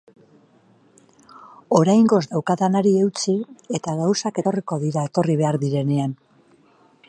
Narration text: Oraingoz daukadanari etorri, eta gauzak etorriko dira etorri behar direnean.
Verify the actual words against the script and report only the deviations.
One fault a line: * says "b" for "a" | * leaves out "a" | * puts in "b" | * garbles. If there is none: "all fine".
* says "eutsi" for "etorri"